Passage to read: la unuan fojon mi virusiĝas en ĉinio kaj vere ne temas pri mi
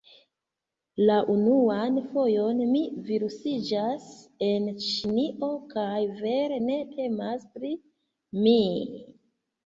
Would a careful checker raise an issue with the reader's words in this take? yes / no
no